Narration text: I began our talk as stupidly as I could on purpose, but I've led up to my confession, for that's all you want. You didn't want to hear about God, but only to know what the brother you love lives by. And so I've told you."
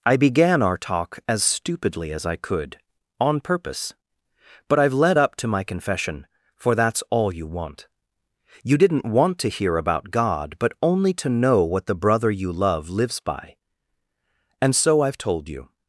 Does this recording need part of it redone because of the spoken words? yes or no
no